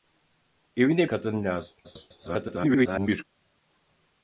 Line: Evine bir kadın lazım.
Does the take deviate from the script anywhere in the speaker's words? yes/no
yes